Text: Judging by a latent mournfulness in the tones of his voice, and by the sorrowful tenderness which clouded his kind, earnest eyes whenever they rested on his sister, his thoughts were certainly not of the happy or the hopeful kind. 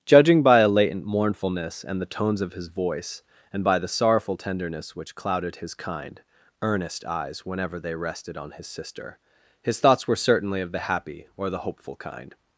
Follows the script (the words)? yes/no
no